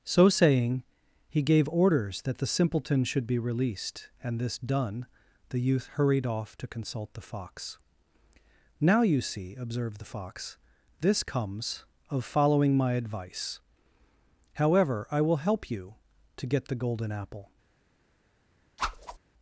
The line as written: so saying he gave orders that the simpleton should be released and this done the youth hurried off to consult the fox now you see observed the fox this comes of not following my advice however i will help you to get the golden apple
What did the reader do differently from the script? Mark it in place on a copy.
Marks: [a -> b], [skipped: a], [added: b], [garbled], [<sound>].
so saying he gave orders that the simpleton should be released and this done the youth hurried off to consult the fox now you see observed the fox this comes of [skipped: not] following my advice however i will help you to get the golden apple [whoosh]